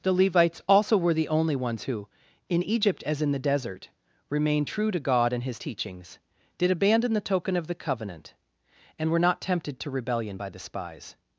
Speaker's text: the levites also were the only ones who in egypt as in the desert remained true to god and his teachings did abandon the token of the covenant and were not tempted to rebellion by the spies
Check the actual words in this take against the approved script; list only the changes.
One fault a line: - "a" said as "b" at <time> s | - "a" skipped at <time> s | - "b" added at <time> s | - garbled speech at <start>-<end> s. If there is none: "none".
none